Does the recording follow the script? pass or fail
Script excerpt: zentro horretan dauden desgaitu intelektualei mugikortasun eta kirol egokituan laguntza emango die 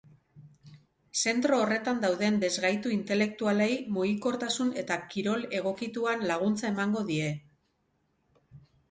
pass